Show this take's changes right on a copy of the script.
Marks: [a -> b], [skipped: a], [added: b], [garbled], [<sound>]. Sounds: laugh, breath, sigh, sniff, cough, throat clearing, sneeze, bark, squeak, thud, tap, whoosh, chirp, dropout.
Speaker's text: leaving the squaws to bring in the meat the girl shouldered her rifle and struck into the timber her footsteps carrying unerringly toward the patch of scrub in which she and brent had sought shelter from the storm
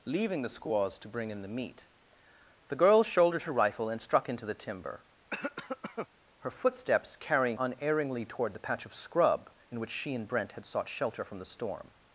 leaving the squaws to bring in the meat the girl shouldered her rifle and struck into the timber [cough] her footsteps carrying unerringly toward the patch of scrub in which she and brent had sought shelter from the storm